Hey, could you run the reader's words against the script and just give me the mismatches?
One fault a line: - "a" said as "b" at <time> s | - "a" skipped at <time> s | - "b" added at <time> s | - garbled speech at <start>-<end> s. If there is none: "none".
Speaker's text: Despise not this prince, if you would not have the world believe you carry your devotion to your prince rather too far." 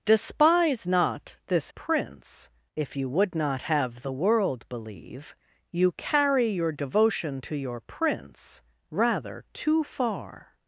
none